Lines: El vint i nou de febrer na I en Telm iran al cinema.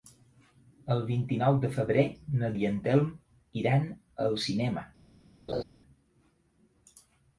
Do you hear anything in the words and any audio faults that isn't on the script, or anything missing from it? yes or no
yes